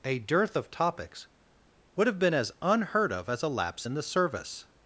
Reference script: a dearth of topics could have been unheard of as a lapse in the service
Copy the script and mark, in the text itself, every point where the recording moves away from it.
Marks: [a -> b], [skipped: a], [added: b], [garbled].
a dearth of topics [could -> would] have been [added: as] unheard of as a lapse in the service